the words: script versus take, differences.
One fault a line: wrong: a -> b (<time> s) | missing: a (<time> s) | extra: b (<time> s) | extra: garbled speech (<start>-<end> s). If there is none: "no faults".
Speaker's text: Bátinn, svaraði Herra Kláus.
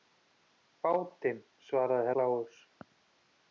missing: Herra (2.1 s)